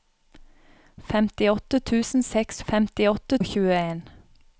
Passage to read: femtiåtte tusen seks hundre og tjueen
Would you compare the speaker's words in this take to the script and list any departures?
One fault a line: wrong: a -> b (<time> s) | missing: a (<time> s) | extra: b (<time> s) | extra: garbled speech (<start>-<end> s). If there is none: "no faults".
wrong: hundre -> femtiåtte (2.7 s)